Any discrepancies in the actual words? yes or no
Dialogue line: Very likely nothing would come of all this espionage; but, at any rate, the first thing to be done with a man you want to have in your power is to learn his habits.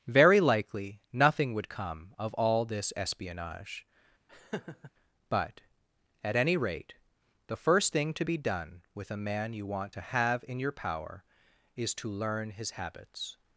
no